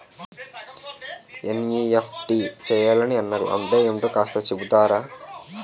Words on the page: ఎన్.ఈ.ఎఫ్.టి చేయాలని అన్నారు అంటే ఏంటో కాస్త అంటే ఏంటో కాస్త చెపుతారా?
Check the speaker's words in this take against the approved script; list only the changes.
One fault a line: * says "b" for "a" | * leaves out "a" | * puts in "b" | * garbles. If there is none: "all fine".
* leaves out "అంటే ఏంటో కాస్త"